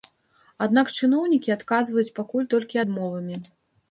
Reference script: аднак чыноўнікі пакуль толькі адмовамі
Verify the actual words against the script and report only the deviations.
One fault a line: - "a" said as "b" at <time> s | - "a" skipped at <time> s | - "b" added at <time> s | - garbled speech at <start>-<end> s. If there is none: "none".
- "адказваюць" added at 1.6 s